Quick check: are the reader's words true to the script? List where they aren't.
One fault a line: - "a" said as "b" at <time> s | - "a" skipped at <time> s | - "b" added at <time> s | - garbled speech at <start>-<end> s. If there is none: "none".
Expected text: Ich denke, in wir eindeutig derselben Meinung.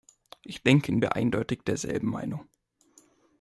none